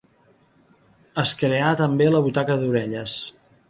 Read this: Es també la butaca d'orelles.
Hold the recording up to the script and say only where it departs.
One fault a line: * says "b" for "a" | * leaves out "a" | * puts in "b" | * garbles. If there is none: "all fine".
* puts in "creà"